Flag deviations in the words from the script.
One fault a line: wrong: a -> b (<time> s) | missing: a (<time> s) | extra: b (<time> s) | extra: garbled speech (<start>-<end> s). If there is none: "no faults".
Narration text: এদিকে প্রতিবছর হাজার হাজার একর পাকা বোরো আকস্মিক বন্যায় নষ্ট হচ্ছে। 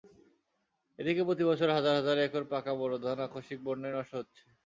extra: ধান (3.0 s)